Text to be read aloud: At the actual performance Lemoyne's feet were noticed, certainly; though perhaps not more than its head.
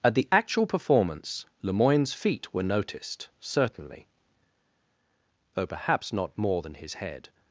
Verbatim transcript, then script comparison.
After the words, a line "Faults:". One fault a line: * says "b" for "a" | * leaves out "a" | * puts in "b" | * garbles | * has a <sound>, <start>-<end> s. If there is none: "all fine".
At the actual performance Lemoyne's feet were noticed, certainly; though perhaps not more than his head.
Faults:
* says "his" for "its"